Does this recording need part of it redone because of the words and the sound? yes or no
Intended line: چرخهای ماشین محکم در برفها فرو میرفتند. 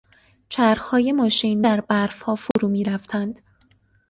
yes